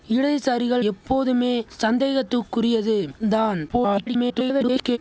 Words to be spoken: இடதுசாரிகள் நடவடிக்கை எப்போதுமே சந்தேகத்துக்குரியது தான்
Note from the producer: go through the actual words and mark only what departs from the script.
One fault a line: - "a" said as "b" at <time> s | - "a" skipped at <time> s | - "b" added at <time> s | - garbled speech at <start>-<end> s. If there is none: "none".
- "நடவடிக்கை" skipped at 0.8 s
- garbled speech at 3.7-5.0 s